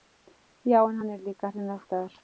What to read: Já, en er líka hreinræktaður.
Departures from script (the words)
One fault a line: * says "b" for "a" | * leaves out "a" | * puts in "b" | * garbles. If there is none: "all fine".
* puts in "hann"